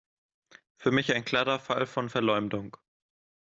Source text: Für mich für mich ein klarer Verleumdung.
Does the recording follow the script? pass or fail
fail